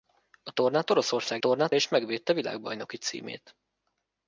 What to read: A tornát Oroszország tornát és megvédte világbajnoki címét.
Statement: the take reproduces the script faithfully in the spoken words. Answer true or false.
true